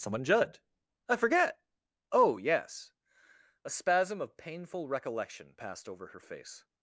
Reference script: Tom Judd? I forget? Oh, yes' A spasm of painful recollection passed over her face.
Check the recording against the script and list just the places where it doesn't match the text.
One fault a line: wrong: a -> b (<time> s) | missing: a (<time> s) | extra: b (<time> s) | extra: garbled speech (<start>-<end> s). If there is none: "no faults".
wrong: Tom -> Someone (0.0 s)